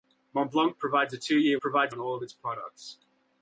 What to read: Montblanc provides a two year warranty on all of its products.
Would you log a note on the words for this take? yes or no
yes